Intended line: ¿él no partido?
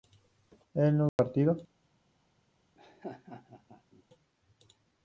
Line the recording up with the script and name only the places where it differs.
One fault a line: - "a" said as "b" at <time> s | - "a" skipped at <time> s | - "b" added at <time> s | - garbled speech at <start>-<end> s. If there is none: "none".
none